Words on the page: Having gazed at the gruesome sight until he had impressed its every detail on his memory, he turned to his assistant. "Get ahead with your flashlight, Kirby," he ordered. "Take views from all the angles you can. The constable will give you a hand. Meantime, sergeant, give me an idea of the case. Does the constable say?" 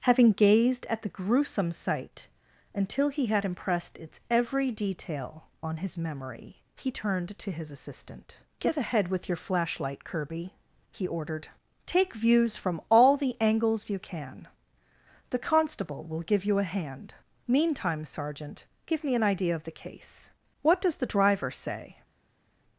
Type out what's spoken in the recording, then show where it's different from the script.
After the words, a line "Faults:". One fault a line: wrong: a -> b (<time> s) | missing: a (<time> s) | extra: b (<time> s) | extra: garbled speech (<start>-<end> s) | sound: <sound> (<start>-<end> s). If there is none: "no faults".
Having gazed at the gruesome sight until he had impressed its every detail on his memory, he turned to his assistant. "Get ahead with your flashlight, Kirby," he ordered. "Take views from all the angles you can. The constable will give you a hand. Meantime, sergeant, give me an idea of the case. What does the driver say?"
Faults:
extra: What (20.6 s)
wrong: constable -> driver (21.1 s)